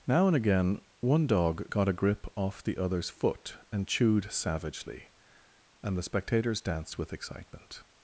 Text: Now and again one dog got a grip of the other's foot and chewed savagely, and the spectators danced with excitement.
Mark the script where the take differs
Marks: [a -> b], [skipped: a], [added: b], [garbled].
Now and again one dog got a grip [of -> off] the other's foot and chewed savagely, and the spectators danced with excitement.